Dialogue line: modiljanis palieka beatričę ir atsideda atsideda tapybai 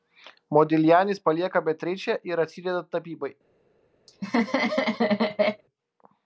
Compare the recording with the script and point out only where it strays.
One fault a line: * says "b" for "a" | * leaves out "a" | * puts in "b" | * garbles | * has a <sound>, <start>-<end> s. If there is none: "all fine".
* leaves out "atsideda"
* has a laugh, 4.1-5.6 s